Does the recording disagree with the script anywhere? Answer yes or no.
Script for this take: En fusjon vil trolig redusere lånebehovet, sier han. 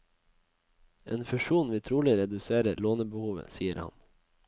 no